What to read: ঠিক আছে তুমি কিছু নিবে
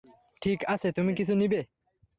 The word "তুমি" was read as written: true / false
true